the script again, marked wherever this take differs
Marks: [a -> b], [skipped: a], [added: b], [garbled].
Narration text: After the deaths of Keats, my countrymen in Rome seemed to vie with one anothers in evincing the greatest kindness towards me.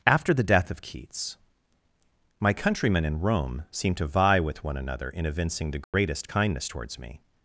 After the [deaths -> death] of Keats, my countrymen in Rome seemed to vie with one [anothers -> another] in evincing the greatest kindness towards me.